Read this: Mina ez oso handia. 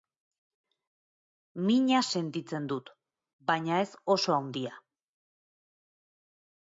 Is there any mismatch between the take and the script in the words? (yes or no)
yes